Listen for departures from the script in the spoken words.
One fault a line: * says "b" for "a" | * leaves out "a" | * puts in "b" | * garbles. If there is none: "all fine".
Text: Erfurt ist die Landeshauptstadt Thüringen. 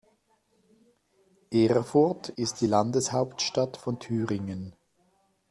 * puts in "von"